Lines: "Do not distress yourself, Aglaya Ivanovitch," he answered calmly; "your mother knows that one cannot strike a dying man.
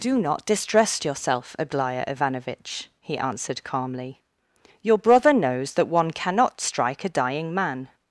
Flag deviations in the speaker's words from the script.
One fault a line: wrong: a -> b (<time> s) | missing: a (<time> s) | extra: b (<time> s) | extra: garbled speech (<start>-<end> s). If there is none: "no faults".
wrong: mother -> brother (5.0 s)